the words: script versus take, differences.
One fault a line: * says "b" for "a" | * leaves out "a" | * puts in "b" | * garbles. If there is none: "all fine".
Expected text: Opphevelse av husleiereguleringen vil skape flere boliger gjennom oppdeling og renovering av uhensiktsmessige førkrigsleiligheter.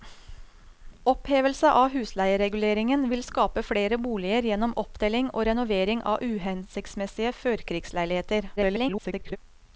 * garbles